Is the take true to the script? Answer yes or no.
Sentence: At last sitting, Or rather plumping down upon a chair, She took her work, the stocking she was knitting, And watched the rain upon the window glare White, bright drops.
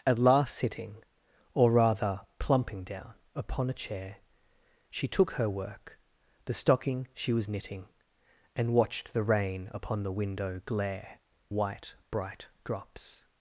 yes